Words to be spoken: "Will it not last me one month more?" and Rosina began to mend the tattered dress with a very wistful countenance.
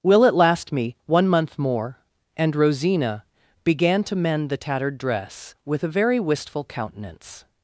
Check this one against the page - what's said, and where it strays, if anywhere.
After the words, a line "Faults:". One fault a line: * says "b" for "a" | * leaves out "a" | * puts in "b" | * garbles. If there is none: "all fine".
"Will it last me one month more?" and Rosina began to mend the tattered dress with a very wistful countenance.
Faults:
* leaves out "not"